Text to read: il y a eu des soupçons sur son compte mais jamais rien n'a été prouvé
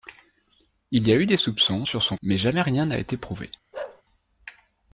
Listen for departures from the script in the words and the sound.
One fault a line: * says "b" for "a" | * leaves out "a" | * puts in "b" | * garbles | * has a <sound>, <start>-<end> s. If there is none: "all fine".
* leaves out "compte"
* has a bark, 3.7-4.0 s